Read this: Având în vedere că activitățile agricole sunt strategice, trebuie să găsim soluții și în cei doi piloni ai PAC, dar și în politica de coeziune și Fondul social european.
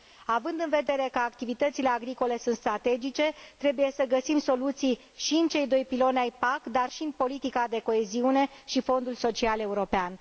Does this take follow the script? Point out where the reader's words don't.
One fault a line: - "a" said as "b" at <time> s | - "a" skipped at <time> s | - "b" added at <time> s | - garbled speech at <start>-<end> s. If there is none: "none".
none